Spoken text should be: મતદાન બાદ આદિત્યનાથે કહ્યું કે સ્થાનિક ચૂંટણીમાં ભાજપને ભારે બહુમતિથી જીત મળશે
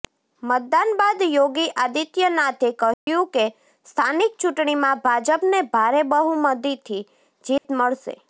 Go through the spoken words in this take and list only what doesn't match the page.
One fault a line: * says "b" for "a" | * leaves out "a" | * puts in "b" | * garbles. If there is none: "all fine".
* puts in "યોગી"